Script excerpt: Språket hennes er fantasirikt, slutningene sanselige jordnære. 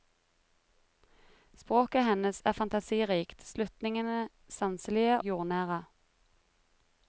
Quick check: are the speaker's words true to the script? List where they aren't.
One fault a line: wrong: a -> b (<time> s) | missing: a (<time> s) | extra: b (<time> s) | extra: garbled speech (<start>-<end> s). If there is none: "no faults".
no faults